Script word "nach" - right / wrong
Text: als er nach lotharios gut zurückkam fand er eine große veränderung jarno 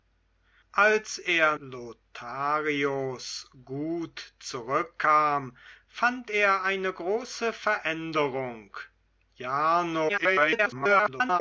wrong